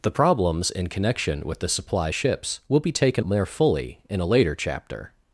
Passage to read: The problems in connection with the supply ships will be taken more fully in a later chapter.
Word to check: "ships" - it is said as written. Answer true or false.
true